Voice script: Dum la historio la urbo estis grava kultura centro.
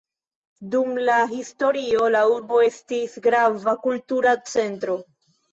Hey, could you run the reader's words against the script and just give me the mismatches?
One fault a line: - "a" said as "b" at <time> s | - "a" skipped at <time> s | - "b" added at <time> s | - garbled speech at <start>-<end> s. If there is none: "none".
none